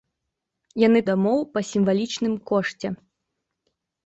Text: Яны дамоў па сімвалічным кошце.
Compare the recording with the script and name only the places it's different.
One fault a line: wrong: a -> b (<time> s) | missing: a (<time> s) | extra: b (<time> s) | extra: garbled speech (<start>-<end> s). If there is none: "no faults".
no faults